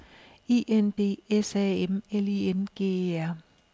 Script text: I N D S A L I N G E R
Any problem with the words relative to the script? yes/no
yes